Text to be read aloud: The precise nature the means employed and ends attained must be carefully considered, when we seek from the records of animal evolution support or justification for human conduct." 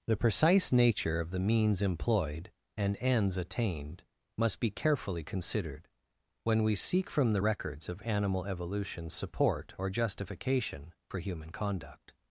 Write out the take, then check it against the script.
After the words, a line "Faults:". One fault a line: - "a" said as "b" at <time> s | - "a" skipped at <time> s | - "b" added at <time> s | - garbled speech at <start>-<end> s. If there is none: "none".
The precise nature of the means employed and ends attained must be carefully considered, when we seek from the records of animal evolution support or justification for human conduct."
Faults:
- "of" added at 1.2 s